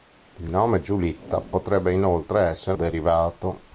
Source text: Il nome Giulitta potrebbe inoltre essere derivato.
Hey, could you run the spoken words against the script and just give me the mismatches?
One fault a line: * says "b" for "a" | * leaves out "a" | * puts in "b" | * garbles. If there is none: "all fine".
all fine